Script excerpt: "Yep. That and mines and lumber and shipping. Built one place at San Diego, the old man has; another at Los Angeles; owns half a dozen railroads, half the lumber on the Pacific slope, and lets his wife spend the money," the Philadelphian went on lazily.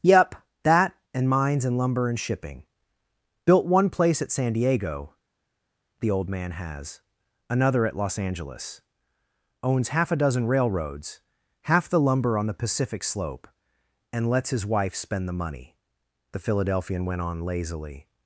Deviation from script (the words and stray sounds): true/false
false